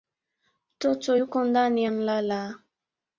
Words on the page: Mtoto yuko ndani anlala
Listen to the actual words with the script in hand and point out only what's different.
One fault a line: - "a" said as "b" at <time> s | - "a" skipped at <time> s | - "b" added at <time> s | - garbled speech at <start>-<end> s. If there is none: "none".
none